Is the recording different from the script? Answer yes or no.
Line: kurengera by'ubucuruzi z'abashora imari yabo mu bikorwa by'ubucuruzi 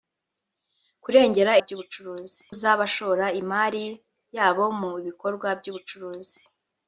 no